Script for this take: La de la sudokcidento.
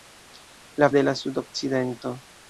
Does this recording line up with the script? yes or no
yes